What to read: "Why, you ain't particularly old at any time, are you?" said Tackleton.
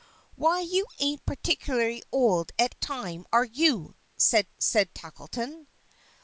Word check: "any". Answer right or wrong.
wrong